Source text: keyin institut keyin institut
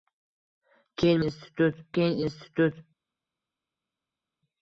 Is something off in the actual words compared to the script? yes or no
no